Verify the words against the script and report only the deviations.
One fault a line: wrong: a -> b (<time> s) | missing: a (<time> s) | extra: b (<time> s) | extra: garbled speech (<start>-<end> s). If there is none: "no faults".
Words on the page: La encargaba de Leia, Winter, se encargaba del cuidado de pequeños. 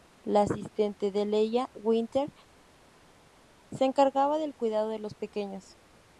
wrong: encargaba -> asistente (0.4 s)
extra: los (5.0 s)